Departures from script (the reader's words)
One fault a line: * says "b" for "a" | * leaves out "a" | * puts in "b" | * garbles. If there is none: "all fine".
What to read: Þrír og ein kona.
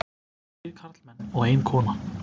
* puts in "karlmenn"